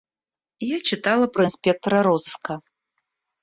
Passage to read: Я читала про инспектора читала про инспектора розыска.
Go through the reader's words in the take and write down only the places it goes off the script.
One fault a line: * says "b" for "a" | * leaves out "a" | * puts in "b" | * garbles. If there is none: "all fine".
* leaves out "читала про инспектора"